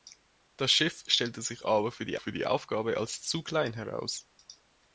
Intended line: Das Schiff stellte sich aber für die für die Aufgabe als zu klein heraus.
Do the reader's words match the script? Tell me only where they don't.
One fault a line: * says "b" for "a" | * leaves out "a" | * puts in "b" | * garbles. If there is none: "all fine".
all fine